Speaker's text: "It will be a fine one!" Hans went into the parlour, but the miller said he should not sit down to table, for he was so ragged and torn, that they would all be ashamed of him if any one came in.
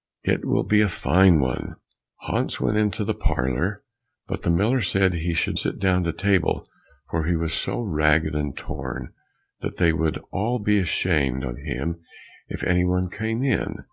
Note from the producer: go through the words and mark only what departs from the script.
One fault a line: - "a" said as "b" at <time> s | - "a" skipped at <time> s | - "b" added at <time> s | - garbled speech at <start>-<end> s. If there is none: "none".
- "not" skipped at 5.6 s